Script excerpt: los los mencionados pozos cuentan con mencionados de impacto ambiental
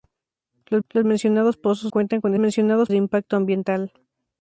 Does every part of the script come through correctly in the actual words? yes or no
yes